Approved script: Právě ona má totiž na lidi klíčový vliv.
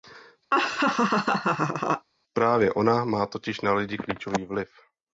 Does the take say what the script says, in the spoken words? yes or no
yes